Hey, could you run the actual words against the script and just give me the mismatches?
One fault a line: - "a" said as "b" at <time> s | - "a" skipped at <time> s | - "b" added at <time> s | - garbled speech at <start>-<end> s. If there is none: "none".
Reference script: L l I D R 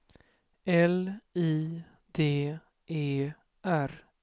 - "l" skipped at 1.2 s
- "E" added at 2.9 s